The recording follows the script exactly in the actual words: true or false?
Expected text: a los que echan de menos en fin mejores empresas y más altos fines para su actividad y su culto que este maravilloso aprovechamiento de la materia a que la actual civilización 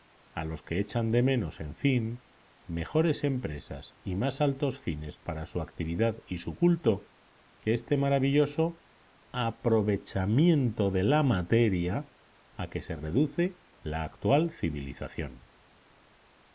false